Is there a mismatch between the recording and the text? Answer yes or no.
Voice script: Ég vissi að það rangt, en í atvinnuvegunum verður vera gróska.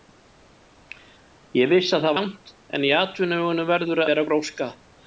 no